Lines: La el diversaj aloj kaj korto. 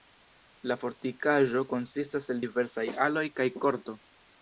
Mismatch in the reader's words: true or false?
true